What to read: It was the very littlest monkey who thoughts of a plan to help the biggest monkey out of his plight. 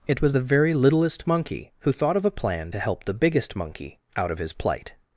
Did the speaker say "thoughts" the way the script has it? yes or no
no